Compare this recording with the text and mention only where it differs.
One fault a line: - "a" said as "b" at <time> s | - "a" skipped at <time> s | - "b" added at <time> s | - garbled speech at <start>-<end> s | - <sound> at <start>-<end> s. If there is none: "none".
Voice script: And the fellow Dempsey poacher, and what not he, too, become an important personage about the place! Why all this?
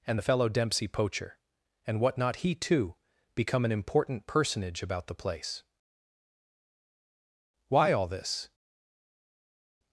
none